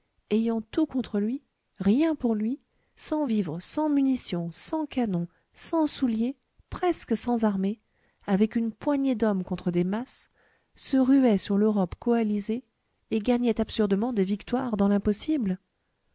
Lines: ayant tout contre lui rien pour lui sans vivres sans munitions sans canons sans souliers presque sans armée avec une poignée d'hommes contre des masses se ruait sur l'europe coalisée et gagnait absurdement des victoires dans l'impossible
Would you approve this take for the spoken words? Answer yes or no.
yes